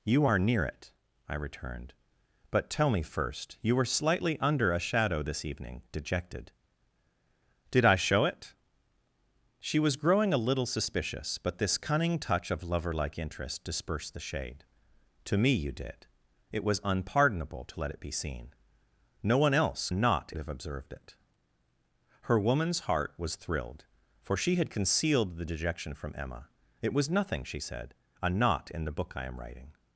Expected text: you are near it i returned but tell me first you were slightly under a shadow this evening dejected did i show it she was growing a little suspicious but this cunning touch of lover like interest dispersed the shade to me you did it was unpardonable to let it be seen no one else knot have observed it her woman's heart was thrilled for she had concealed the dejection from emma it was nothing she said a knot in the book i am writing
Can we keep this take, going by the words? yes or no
yes